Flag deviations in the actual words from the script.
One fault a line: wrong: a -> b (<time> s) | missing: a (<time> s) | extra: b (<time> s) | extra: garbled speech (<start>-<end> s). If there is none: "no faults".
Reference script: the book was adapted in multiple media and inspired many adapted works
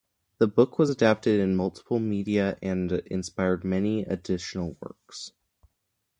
wrong: adapted -> additional (4.0 s)